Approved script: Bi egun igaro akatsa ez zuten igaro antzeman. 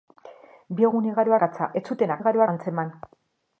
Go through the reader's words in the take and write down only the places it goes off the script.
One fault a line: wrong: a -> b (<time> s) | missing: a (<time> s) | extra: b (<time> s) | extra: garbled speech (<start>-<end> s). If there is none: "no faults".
no faults